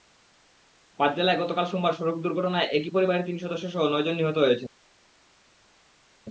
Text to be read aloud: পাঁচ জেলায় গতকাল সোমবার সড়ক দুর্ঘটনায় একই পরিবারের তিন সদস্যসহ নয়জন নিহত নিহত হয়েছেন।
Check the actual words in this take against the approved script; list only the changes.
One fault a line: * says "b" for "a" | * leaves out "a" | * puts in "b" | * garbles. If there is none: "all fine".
* leaves out "নিহত"